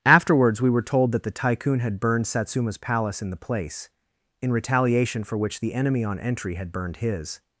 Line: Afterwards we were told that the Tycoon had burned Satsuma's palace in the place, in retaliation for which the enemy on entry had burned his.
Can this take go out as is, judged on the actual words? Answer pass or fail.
pass